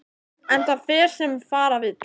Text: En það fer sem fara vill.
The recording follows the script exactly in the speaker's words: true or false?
true